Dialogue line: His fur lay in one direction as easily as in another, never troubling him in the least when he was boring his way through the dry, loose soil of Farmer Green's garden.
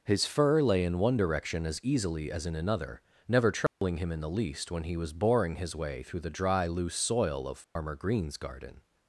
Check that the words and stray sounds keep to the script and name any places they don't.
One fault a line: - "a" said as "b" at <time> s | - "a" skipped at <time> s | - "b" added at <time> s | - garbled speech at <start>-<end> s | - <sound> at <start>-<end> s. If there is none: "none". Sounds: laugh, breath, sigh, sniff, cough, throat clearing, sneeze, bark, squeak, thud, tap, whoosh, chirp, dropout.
- dropout at 3.7-3.8 s
- dropout at 7.6-7.8 s